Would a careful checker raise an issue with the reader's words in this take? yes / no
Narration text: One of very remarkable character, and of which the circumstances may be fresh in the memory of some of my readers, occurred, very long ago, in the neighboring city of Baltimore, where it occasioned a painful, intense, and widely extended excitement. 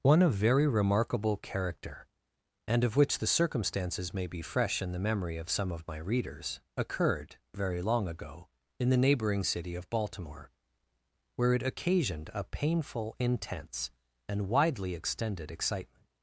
no